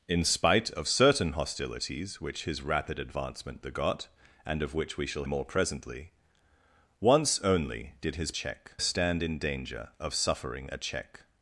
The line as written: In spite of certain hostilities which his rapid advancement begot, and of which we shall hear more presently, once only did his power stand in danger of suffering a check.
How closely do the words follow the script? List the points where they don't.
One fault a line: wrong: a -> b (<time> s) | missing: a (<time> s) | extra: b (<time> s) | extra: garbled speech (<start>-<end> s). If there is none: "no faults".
missing: hear (5.2 s)
wrong: power -> check (8.3 s)